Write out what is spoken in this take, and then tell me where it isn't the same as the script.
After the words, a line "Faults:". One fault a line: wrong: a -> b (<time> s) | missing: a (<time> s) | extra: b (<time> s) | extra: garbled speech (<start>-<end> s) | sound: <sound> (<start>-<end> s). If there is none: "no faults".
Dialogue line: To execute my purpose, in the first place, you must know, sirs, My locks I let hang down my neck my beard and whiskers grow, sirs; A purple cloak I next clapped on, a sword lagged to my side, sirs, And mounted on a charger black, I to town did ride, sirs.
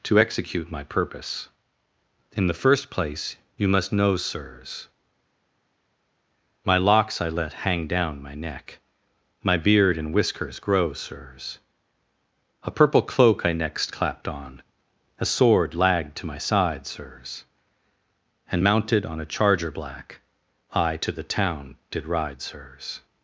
To execute my purpose, in the first place, you must know, sirs, My locks I let hang down my neck my beard and whiskers grow, sirs; A purple cloak I next clapped on, a sword lagged to my side, sirs, And mounted on a charger black, I to the town did ride, sirs.
Faults:
extra: the (21.1 s)